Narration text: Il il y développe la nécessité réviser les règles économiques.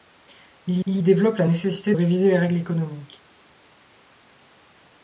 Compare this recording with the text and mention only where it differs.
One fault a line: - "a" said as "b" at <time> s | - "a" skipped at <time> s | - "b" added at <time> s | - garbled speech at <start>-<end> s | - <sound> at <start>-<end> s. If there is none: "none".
none